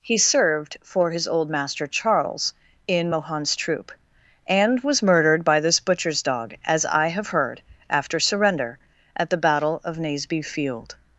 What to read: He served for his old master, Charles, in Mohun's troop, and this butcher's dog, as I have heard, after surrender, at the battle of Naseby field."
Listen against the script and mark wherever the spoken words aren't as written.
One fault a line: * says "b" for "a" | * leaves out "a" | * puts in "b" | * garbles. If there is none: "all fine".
* puts in "was murdered by"